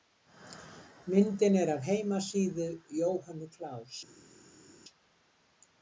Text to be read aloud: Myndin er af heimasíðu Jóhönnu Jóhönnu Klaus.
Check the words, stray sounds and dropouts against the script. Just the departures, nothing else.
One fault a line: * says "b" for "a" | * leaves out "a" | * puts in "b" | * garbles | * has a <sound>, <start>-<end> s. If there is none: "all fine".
* leaves out "Jóhönnu"